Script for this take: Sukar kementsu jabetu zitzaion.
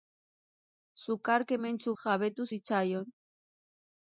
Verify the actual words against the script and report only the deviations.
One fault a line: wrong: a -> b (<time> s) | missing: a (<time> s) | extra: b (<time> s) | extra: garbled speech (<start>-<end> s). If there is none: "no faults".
no faults